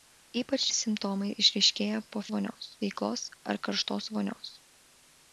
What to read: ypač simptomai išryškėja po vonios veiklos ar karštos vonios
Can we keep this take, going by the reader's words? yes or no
yes